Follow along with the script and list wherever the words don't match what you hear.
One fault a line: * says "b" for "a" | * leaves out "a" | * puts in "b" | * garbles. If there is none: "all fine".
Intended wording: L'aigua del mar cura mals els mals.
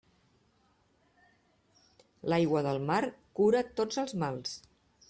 * says "tots" for "mals"